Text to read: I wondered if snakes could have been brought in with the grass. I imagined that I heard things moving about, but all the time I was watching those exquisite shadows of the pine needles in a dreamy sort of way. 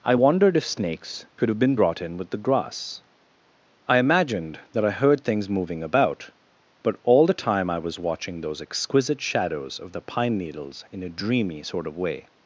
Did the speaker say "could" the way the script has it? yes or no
yes